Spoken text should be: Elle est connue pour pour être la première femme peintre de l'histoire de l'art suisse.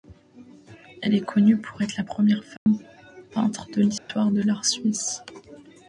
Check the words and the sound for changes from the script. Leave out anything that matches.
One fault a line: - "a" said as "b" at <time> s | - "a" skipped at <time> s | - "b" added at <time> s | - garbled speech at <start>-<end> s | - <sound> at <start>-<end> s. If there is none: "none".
- "pour" skipped at 1.8 s
- dropout at 2.6-2.7 s
- dropout at 4.0-4.1 s